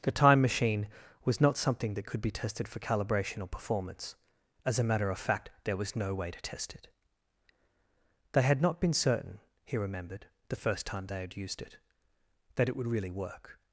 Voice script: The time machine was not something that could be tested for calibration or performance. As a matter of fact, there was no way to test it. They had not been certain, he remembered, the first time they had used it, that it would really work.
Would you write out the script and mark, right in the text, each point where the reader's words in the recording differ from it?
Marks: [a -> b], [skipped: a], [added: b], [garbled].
The time machine was not something that could be tested for calibration or performance. As a matter of fact, there was no way to test it. They had not been certain, he remembered, the first time they had used it, that it would really work.